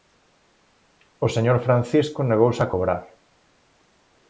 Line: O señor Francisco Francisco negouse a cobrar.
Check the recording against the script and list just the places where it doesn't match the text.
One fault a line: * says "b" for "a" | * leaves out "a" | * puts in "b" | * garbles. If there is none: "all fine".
* leaves out "Francisco"